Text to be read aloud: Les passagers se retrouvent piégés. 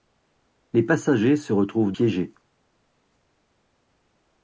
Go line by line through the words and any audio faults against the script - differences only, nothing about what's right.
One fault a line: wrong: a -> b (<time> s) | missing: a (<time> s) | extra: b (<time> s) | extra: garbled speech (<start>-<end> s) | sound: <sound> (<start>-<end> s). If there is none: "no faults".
no faults